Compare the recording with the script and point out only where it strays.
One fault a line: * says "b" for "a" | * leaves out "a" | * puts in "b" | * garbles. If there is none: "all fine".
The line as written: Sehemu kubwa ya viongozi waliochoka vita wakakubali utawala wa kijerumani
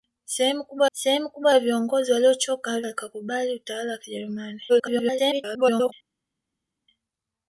* puts in "sehemu kubwa"
* leaves out "vita"
* garbles